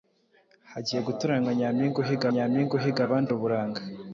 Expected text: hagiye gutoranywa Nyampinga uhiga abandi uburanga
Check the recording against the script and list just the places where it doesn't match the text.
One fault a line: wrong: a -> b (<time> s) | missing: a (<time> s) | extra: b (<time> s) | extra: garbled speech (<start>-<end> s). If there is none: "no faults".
extra: Nyampinga uhiga (2.3 s)